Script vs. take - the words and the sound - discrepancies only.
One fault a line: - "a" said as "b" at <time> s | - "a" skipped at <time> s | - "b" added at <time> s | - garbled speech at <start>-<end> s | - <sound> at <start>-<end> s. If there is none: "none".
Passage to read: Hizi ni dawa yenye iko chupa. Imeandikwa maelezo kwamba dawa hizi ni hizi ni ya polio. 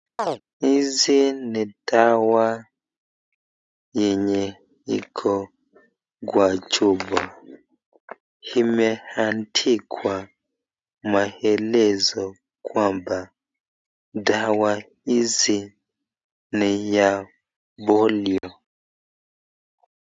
- chirp at 0.2-0.4 s
- "kwa" added at 6.3 s
- "hizi ni" skipped at 17.0 s
- dropout at 18.4-18.4 s